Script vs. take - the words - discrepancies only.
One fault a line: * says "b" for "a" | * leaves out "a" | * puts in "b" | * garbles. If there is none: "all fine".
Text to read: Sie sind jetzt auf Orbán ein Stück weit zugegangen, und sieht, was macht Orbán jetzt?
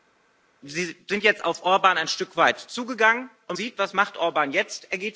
all fine